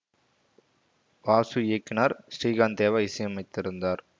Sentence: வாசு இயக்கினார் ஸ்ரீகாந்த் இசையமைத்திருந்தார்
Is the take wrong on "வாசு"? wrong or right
right